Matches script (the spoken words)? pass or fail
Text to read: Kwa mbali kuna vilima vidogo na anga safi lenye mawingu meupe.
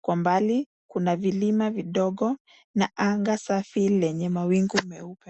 pass